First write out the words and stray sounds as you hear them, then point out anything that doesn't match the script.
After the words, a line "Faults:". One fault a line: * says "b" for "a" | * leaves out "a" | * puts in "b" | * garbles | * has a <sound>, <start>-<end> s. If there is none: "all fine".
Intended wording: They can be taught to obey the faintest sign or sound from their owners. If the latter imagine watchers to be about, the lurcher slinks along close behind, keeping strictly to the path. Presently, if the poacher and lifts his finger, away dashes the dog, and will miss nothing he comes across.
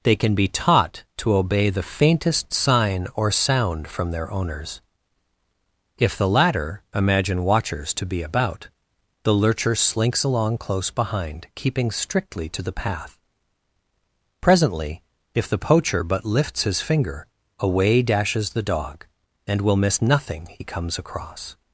They can be taught to obey the faintest sign or sound from their owners. If the latter imagine watchers to be about, the lurcher slinks along close behind, keeping strictly to the path. Presently, if the poacher but lifts his finger, away dashes the dog, and will miss nothing he comes across.
Faults:
* says "but" for "and"